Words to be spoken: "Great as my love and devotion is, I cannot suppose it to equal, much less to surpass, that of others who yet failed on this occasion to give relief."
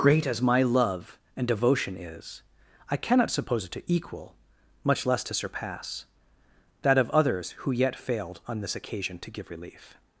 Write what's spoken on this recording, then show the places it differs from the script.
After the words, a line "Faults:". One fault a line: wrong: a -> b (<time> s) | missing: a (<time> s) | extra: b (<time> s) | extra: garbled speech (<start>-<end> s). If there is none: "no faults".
"Great as my love and devotion is, I cannot suppose it to equal, much less to surpass, that of others who yet failed on this occasion to give relief."
Faults:
no faults